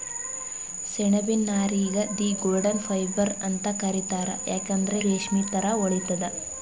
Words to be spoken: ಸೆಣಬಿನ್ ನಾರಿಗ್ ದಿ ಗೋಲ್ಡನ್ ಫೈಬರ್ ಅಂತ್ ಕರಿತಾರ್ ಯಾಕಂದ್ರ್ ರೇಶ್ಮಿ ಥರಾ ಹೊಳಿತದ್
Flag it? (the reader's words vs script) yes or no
no